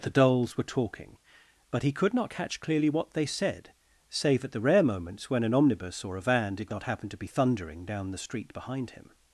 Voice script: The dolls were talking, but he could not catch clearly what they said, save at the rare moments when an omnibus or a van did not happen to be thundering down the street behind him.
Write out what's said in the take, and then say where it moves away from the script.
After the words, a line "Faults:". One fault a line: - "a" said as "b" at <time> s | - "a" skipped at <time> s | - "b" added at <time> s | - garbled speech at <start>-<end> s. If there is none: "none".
The dolls were talking, but he could not catch clearly what they said, save at the rare moments when an omnibus or a van did not happen to be thundering down the street behind him.
Faults:
none